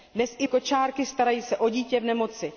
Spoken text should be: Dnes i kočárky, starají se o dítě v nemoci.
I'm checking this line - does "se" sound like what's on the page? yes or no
yes